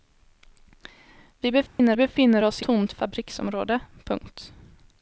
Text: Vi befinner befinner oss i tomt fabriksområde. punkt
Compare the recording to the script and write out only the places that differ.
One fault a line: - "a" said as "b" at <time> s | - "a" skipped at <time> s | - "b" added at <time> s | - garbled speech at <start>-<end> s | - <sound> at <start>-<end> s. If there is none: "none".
- dropout at 1.7-1.8 s